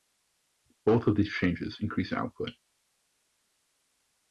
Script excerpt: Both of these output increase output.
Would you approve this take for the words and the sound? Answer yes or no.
no